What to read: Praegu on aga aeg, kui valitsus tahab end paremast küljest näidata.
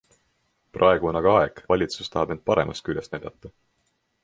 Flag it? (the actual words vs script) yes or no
yes